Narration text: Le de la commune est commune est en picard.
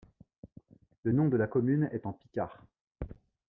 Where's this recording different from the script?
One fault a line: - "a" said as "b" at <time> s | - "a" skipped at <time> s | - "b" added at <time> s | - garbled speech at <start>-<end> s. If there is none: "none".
- "nom" added at 1.1 s
- "commune est" skipped at 2.1 s